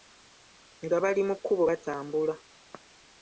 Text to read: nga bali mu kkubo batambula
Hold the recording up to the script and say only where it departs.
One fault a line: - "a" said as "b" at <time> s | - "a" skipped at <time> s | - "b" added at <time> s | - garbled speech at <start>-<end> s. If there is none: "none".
none